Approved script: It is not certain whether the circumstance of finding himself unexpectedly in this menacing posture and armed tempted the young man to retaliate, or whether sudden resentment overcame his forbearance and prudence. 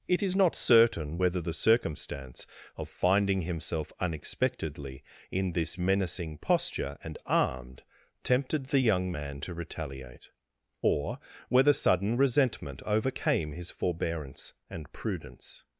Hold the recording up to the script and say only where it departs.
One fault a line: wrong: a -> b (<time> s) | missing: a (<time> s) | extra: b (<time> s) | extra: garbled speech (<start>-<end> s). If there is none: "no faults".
no faults